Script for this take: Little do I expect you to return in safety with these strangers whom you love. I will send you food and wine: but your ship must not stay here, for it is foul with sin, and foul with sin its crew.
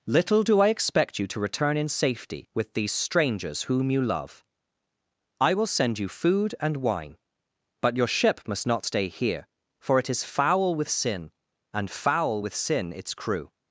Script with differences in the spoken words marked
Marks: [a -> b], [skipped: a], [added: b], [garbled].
Little do I expect you to return in safety with these strangers whom you love. I will send you food and wine: but your ship must not stay here, for it is foul with sin, and foul with sin its crew.